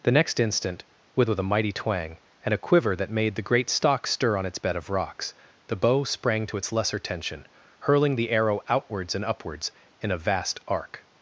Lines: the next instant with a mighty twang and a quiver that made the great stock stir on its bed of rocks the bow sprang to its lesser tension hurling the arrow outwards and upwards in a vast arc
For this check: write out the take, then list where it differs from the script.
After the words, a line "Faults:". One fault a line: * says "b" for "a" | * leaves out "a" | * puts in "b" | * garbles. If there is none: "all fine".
the next instant with with a mighty twang and a quiver that made the great stock stir on its bed of rocks the bow sprang to its lesser tension hurling the arrow outwards and upwards in a vast arc
Faults:
* puts in "with"